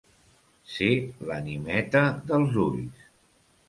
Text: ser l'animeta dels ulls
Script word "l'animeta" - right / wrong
right